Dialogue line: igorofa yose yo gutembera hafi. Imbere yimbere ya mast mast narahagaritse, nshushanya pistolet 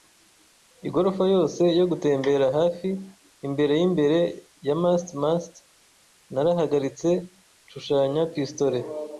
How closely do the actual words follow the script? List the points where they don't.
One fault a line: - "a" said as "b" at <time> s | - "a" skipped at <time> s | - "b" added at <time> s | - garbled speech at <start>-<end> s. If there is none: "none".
none